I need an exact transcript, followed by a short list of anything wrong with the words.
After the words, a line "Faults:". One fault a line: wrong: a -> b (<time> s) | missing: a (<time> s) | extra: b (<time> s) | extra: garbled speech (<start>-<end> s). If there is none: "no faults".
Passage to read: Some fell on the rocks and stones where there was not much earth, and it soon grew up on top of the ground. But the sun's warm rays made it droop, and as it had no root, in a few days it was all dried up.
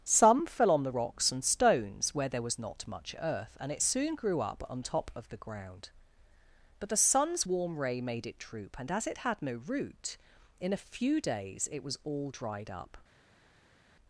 Some fell on the rocks and stones where there was not much earth, and it soon grew up on top of the ground. But the sun's warm ray made it droop, and as it had no root, in a few days it was all dried up.
Faults:
wrong: rays -> ray (7.8 s)